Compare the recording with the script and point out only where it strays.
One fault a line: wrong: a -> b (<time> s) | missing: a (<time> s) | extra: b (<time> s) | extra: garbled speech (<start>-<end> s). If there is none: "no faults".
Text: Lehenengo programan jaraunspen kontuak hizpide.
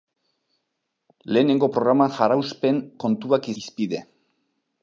no faults